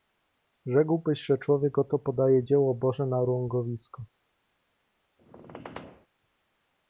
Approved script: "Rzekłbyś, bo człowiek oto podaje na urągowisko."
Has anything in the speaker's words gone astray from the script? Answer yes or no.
yes